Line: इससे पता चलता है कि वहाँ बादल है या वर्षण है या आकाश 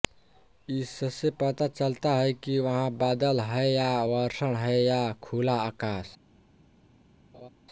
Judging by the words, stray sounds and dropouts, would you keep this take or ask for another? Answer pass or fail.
fail